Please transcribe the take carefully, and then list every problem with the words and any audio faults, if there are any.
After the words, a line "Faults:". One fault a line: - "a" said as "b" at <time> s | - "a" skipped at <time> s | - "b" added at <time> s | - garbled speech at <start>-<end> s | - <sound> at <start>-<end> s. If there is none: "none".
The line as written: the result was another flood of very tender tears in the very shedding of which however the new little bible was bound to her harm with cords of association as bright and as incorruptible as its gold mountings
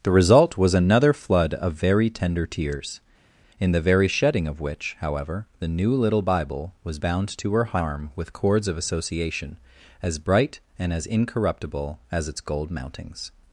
the result was another flood of very tender tears in the very shedding of which however the new little bible was bound to her harm with cords of association as bright and as incorruptible as its gold mountings
Faults:
none